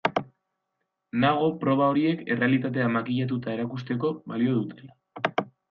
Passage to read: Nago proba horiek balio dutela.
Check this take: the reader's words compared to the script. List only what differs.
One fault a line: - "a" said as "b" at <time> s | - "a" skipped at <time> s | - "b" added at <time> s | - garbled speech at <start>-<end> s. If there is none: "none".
- "errealitatea makillatuta erakusteko" added at 2.4 s